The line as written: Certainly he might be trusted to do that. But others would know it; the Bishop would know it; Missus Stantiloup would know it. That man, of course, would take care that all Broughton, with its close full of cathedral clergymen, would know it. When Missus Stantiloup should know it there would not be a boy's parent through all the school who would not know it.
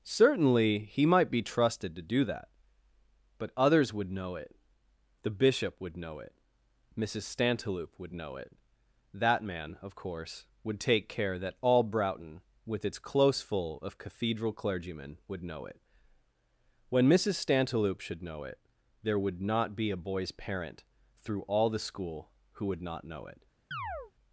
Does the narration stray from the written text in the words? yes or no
no